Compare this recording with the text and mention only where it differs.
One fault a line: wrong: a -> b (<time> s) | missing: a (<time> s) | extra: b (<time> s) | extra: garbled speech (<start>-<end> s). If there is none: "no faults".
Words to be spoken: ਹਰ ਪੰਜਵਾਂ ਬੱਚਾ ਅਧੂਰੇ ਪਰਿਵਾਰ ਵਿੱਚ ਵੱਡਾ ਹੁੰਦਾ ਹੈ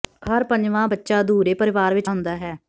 missing: ਵੱਡਾ (2.1 s)